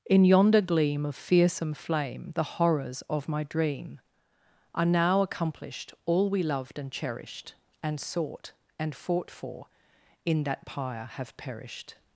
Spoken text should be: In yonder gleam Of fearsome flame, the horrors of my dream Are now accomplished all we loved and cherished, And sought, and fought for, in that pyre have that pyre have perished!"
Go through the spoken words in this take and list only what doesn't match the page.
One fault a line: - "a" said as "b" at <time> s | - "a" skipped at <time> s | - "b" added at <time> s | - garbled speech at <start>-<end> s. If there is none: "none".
- "that pyre have" skipped at 11.3 s